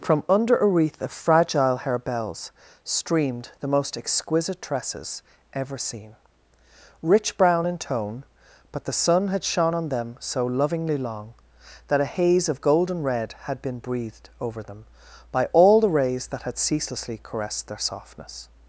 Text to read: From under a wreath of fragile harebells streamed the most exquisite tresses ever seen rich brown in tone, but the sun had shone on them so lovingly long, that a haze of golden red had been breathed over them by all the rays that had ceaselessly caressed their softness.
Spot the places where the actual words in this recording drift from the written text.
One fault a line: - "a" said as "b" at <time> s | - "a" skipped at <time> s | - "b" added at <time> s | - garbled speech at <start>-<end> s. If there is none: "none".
none